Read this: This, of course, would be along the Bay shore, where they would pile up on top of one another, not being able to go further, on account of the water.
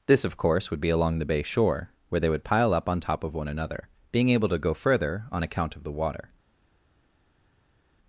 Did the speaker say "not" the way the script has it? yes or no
no